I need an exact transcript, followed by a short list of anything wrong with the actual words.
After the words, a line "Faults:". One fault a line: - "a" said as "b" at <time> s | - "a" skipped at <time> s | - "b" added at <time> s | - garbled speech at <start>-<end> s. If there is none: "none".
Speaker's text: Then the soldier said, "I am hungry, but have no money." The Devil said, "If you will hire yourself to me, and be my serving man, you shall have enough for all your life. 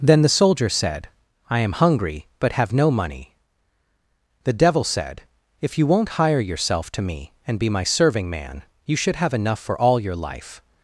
Then the soldier said, "I am hungry, but have no money." The Devil said, "If you won't hire yourself to me, and be my serving man, you should have enough for all your life.
Faults:
- "will" said as "won't" at 5.8 s
- "shall" said as "should" at 8.9 s